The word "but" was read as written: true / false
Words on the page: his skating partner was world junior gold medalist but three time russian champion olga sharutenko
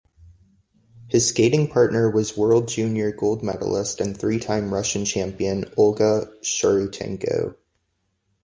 false